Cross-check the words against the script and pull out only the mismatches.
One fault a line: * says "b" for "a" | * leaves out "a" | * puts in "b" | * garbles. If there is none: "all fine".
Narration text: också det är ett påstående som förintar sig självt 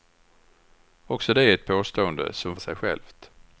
* leaves out "förintar"